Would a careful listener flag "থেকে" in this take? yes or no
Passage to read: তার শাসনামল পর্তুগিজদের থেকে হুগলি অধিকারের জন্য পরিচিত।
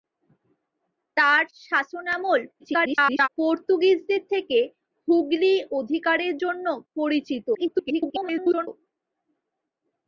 no